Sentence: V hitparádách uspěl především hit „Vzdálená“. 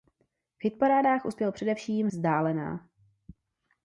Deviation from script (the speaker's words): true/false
true